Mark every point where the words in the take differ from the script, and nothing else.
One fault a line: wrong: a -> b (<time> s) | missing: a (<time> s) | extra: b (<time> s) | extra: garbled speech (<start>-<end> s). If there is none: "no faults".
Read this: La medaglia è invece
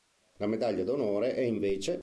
extra: d'onore (0.8 s)